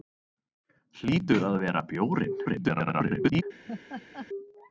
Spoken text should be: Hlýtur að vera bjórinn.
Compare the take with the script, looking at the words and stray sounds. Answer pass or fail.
fail